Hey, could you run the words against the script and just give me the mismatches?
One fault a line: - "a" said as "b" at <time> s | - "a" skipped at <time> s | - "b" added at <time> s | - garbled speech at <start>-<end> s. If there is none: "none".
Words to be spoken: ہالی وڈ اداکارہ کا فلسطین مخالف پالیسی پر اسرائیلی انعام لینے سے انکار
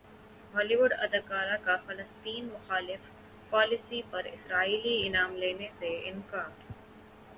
none